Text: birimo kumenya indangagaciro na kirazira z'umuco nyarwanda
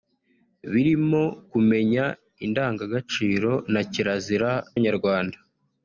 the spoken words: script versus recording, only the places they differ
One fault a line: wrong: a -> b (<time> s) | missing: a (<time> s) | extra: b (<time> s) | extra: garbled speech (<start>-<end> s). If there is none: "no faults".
missing: z'umuco (4.5 s)